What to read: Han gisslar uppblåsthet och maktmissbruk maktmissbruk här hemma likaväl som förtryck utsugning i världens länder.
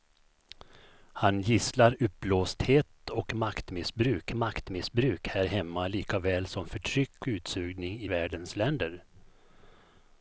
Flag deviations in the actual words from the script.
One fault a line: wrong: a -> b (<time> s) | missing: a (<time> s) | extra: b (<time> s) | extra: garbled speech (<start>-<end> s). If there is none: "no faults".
no faults